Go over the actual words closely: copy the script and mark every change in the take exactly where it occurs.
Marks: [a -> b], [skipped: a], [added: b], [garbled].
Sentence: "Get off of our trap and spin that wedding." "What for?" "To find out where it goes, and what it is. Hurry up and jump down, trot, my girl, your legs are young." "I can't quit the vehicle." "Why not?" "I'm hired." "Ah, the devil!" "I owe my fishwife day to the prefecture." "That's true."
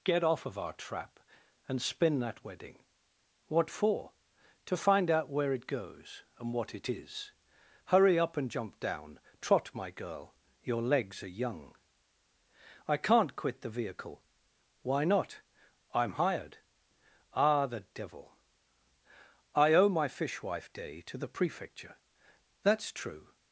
"Get off of our trap and spin that wedding." "What for?" "To find out where it goes, and what it is. Hurry up and jump down, trot, my girl, your legs are young." "I can't quit the vehicle." "Why not?" "I'm hired." "Ah, the devil!" "I owe my fishwife day to the prefecture." "That's true."